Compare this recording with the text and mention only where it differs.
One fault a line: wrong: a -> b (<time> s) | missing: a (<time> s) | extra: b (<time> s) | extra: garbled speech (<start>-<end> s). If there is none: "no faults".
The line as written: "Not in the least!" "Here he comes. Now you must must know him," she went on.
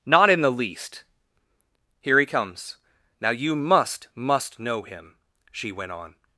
no faults